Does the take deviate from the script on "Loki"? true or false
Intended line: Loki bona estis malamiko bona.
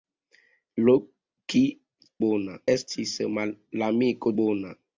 false